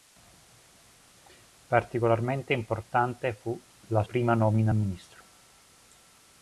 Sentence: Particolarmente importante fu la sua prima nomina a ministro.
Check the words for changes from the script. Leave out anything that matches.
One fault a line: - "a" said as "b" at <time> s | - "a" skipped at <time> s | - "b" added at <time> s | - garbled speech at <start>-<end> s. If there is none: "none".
- "sua" skipped at 4.0 s